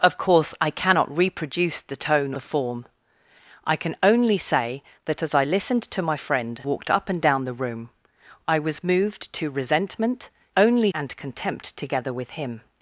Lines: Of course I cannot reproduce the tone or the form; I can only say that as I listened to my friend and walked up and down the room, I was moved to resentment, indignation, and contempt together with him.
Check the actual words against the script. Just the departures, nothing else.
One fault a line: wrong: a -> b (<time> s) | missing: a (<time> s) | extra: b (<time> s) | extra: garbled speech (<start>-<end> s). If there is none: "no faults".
missing: or (2.3 s)
missing: and (6.6 s)
wrong: indignation -> only (10.6 s)